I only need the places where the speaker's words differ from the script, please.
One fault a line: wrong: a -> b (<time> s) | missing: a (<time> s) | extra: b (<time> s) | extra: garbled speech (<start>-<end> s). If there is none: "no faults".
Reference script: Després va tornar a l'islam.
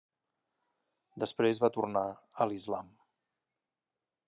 no faults